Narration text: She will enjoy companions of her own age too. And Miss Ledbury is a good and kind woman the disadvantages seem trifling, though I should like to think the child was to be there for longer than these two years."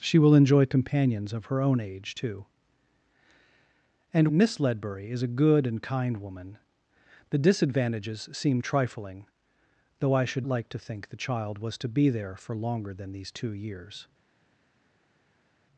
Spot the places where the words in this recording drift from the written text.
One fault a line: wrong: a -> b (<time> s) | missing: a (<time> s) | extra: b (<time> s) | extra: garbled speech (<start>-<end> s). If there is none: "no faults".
no faults